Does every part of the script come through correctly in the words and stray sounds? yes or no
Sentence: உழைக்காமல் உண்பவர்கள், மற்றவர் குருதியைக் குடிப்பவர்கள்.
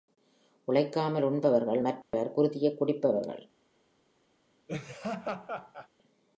no